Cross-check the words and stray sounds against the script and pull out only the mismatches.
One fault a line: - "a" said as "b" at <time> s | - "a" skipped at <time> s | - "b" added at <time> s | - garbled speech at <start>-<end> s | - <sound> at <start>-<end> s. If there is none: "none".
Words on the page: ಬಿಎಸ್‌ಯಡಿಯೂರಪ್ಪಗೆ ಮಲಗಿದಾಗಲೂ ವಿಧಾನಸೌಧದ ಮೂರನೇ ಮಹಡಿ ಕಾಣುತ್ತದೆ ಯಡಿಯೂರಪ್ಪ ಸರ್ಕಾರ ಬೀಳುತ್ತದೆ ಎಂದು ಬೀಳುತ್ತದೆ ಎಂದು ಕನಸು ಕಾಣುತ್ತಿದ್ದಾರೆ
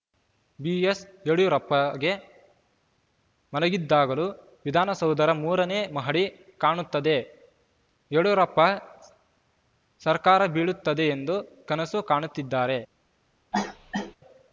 - "ಬೀಳುತ್ತದೆ ಎಂದು" skipped at 11.4 s
- cough at 13.5-14.2 s